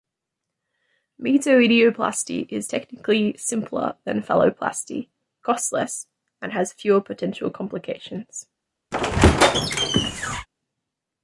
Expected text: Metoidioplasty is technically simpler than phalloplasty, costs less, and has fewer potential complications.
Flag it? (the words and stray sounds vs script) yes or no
yes